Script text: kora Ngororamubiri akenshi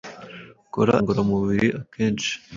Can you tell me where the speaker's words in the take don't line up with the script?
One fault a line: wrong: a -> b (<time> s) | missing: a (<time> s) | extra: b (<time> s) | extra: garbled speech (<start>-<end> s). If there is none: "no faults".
no faults